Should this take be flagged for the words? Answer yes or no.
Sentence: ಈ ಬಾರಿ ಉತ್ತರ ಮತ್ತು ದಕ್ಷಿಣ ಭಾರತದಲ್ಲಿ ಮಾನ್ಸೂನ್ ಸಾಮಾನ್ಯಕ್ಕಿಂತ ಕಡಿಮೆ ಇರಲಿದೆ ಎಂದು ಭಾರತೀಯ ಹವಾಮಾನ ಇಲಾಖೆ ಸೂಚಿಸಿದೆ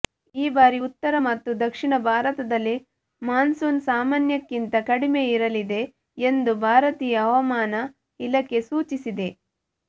no